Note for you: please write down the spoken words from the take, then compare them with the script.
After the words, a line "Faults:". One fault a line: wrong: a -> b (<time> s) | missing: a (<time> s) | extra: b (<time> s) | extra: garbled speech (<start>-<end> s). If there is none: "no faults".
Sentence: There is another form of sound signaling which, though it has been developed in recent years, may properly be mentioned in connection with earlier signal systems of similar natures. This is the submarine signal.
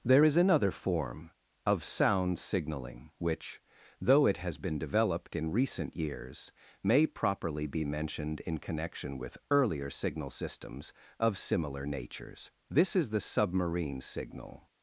There is another form of sound signaling which, though it has been developed in recent years, may properly be mentioned in connection with earlier signal systems of similar natures. This is the submarine signal.
Faults:
no faults